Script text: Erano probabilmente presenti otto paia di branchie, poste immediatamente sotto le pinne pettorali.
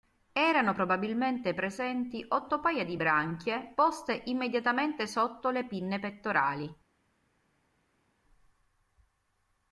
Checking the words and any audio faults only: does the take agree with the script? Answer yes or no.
yes